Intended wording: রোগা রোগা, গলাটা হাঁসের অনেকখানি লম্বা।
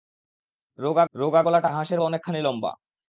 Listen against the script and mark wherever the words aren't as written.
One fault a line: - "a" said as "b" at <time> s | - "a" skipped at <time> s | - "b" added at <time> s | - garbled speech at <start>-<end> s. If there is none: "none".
none